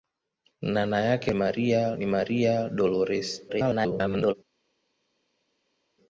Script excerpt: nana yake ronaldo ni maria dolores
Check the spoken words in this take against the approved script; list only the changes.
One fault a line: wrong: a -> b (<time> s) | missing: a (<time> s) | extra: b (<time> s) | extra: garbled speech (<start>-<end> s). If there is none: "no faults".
wrong: ronaldo -> maria (1.3 s)
extra: garbled speech (3.5-4.3 s)